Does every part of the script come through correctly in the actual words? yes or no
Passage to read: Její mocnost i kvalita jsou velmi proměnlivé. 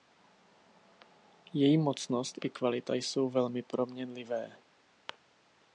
yes